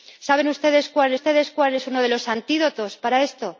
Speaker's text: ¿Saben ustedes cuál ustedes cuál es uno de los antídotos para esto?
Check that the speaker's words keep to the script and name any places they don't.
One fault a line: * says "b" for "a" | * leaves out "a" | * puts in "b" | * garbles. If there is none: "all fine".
all fine